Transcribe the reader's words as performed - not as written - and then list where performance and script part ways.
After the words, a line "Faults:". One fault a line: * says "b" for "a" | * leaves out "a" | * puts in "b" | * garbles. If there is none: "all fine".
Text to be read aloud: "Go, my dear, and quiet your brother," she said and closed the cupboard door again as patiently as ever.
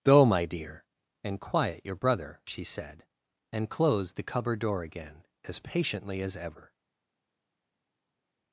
"Go, my dear, and quiet your brother," she said and closed the cupboard door again as patiently as ever.
Faults:
all fine